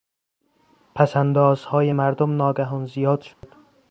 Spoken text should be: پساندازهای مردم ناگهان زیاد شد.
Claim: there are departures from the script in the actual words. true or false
false